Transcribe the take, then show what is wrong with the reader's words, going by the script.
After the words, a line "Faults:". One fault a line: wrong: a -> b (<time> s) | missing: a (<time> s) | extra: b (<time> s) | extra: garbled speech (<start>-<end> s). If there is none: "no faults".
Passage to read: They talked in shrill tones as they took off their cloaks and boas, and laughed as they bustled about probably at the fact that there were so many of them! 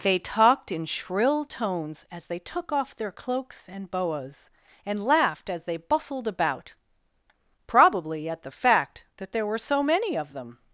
They talked in shrill tones as they took off their cloaks and boas, and laughed as they bustled about probably at the fact that there were so many of them!
Faults:
no faults